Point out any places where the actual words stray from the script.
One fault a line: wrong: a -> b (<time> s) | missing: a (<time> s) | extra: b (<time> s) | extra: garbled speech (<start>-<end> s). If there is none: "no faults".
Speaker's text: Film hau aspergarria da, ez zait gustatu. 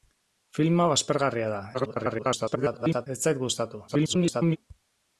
extra: garbled speech (1.7-3.1 s)
extra: garbled speech (3.9-4.6 s)